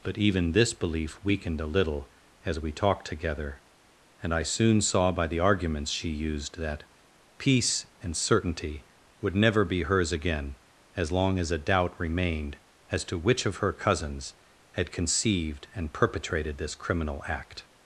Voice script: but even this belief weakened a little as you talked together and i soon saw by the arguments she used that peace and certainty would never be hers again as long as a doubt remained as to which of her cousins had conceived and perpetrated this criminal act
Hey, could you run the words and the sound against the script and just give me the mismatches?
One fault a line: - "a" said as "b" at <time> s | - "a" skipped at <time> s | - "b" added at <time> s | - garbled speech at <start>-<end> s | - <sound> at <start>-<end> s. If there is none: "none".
- "you" said as "we" at 2.6 s